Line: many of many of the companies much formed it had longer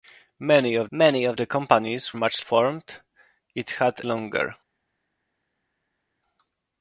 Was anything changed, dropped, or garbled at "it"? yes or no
no